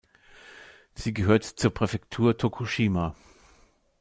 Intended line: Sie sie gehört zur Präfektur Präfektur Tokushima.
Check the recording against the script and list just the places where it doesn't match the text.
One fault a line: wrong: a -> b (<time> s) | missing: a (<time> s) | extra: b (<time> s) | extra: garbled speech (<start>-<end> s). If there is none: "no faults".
missing: sie (1.1 s)
missing: Präfektur (2.4 s)